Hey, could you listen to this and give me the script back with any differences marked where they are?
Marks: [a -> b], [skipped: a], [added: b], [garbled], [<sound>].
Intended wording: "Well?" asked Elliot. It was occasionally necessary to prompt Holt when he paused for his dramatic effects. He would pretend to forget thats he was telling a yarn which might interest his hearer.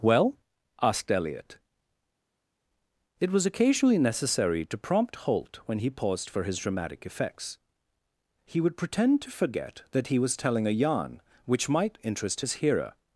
"Well?" asked Elliot. It was occasionally necessary to prompt Holt when he paused for his dramatic effects. He would pretend to forget [thats -> that] he was telling a yarn which might interest his hearer.